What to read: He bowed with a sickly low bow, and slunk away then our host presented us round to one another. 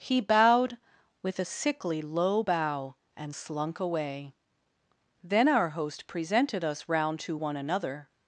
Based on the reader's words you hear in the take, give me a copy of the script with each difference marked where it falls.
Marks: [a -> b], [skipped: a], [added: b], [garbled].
He bowed with a sickly low bow, and slunk away then our host presented us round to one another.